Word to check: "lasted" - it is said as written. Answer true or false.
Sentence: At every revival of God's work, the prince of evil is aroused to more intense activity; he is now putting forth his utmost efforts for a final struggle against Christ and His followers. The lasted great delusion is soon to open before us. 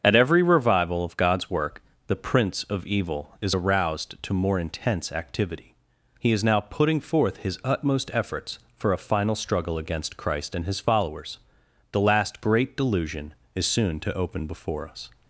false